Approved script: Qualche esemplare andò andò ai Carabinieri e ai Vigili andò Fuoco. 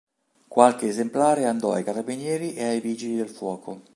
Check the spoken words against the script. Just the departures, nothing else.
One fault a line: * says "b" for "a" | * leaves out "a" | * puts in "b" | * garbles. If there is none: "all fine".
* leaves out "andò"
* says "del" for "andò"